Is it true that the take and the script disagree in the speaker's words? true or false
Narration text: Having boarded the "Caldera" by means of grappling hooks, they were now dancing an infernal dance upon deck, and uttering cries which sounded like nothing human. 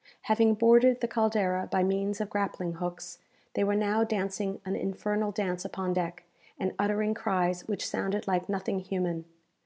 false